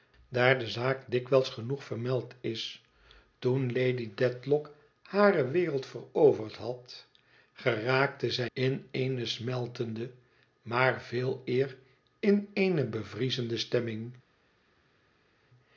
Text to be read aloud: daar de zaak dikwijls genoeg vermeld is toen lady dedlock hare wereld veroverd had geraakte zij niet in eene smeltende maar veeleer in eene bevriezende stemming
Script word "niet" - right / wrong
wrong